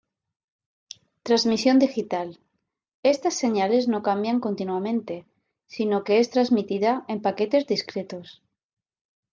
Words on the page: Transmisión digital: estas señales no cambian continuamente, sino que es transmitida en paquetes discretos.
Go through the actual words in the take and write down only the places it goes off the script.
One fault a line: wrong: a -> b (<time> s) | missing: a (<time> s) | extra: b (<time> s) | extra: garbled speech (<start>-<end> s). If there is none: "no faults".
no faults